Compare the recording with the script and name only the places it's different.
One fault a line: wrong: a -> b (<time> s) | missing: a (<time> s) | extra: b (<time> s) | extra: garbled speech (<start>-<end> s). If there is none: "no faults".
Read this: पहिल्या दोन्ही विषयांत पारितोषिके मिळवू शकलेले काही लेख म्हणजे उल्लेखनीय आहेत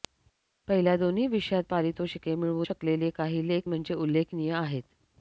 no faults